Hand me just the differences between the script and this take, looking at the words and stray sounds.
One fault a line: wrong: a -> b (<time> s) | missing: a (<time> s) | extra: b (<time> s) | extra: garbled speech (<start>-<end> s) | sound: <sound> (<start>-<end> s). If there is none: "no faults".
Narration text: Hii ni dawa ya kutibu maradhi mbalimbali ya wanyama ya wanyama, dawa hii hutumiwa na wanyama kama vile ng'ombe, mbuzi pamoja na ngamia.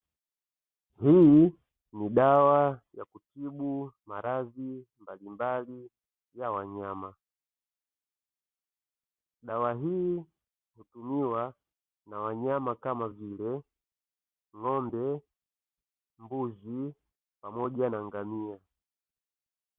missing: ya wanyama (7.2 s)